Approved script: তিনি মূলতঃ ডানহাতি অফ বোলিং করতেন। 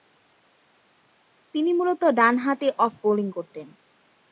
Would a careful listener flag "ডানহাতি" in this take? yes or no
no